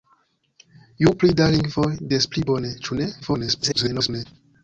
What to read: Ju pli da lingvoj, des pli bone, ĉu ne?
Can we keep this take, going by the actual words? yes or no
no